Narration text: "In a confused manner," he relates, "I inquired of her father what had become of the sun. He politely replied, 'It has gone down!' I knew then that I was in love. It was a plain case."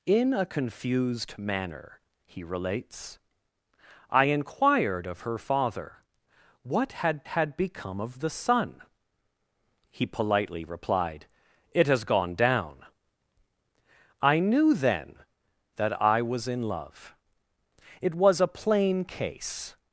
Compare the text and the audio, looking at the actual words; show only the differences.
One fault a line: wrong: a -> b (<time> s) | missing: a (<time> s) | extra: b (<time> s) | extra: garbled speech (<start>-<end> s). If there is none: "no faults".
extra: had (7.3 s)